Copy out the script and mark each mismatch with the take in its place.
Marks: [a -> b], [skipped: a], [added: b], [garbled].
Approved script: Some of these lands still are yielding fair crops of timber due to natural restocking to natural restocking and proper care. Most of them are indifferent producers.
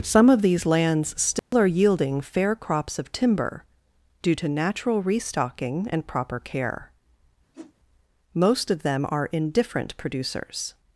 Some of these lands still are yielding fair crops of timber due to natural restocking [skipped: to natural restocking] and proper care. Most of them are indifferent producers.